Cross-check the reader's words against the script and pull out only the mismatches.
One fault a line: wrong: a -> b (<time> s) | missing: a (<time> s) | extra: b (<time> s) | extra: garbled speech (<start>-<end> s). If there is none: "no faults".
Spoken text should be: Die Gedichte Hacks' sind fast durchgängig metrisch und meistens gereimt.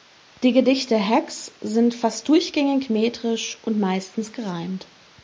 no faults